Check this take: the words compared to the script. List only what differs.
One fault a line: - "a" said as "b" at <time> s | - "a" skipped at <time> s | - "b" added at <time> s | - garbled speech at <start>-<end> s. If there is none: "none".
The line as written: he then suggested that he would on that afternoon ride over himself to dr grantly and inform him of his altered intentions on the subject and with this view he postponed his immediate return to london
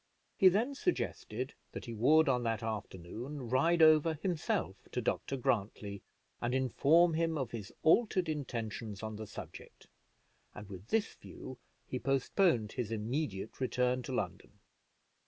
none